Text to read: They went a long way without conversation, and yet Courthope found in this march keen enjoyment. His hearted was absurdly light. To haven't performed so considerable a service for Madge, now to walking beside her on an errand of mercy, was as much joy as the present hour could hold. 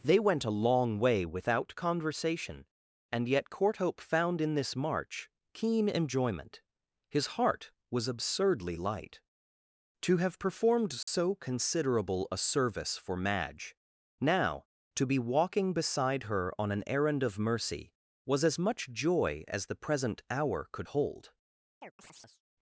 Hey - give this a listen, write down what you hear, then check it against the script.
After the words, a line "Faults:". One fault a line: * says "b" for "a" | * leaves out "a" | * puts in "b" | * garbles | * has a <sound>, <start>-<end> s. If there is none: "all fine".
They went a long way without conversation, and yet Courthope found in this march keen enjoyment. His heart was absurdly light. To have performed so considerable a service for Madge, now to be walking beside her on an errand of mercy, was as much joy as the present hour could hold.
Faults:
* says "heart" for "hearted"
* says "have" for "haven't"
* has a dropout, 11.0-11.1 s
* puts in "be"
* has a chirp, 21.8-22.4 s